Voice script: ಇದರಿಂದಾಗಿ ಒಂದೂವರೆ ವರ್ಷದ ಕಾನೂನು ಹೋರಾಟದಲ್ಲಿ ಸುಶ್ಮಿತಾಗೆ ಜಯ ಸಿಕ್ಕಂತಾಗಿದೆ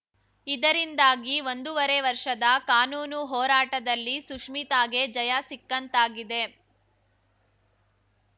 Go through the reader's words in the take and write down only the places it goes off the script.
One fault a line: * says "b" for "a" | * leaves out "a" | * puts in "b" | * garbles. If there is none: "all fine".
all fine